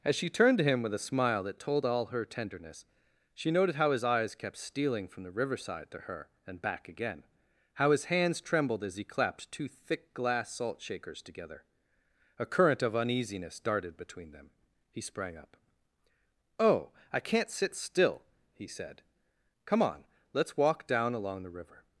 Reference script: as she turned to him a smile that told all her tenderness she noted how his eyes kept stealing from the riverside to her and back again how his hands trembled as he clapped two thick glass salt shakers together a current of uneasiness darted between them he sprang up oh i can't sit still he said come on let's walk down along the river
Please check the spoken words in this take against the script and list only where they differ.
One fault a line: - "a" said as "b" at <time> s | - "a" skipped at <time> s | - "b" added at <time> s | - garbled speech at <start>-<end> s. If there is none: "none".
- "with" added at 0.8 s